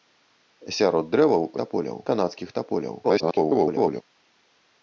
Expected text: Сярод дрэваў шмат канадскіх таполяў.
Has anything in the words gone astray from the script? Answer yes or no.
yes